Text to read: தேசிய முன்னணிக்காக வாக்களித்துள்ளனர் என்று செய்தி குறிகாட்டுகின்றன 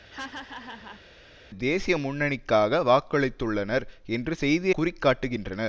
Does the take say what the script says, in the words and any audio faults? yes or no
no